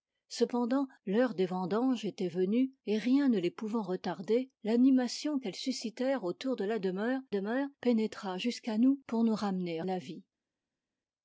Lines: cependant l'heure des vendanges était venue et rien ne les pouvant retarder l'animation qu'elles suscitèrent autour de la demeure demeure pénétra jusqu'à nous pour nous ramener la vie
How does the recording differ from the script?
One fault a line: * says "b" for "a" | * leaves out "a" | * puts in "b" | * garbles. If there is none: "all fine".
all fine